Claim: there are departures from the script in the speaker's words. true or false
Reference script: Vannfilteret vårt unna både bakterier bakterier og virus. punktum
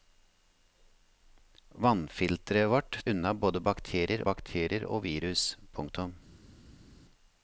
false